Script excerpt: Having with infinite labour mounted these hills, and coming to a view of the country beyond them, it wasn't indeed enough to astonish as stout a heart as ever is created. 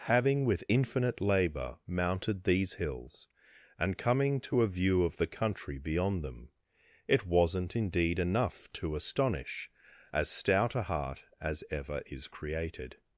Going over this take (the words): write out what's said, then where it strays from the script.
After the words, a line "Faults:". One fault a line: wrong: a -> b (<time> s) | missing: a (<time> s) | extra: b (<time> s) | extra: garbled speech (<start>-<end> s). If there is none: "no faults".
Having with infinite labour mounted these hills, and coming to a view of the country beyond them, it wasn't indeed enough to astonish as stout a heart as ever is created.
Faults:
no faults